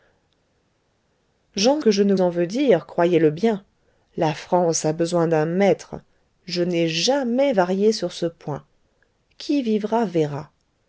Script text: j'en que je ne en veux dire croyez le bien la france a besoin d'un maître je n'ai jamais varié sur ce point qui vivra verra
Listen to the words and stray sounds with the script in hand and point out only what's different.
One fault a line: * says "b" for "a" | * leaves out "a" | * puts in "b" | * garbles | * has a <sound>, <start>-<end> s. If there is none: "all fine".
all fine